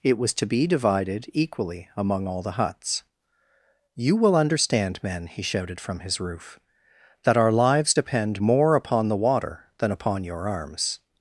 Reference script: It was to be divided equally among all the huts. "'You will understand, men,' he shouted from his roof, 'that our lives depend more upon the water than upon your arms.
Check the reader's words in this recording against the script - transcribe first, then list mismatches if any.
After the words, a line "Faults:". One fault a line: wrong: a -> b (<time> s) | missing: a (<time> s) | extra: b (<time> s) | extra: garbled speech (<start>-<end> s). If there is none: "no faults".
It was to be divided equally among all the huts. "'You will understand, men,' he shouted from his roof, 'that our lives depend more upon the water than upon your arms.
Faults:
no faults